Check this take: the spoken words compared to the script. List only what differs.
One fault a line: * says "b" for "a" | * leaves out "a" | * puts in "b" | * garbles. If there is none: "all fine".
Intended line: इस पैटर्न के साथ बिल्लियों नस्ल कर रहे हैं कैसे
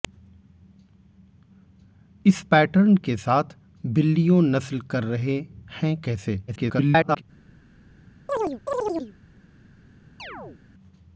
* garbles